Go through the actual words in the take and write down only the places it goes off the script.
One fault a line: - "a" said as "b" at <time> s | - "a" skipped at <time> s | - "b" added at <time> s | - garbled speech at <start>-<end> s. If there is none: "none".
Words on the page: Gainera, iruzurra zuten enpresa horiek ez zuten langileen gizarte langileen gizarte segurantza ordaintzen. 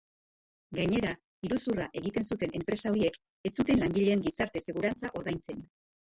- "egiten" added at 2.0 s
- "langileen gizarte" skipped at 4.6 s